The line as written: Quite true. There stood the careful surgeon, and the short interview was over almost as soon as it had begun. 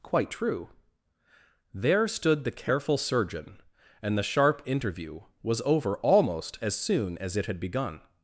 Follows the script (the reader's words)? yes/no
no